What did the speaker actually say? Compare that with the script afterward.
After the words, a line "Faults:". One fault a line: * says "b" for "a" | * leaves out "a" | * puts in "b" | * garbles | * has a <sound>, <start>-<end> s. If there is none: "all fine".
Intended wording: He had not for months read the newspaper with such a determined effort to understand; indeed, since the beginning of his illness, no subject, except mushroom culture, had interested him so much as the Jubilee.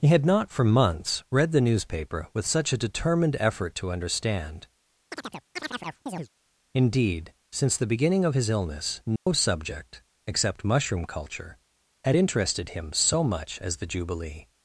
He had not for months read the newspaper with such a determined effort to understand; indeed, since the beginning of his illness, no subject, except mushroom culture, had interested him so much as the Jubilee.
Faults:
* has a chirp, 5.1-6.3 s
* has a dropout, 9.2-9.3 s